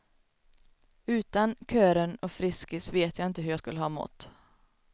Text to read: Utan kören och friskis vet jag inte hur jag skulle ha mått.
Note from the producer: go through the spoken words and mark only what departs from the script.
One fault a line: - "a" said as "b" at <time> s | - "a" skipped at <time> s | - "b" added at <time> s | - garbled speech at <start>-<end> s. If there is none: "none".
none